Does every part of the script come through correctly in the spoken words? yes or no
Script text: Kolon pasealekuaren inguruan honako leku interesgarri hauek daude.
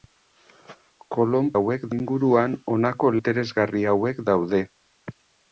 no